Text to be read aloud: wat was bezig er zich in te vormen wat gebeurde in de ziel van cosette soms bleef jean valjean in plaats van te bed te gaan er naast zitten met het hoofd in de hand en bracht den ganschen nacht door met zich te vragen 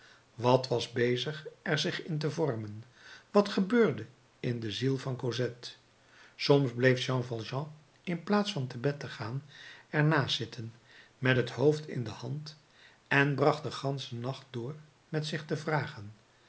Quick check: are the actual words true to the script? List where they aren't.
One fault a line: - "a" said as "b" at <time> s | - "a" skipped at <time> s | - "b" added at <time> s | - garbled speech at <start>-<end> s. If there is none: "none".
none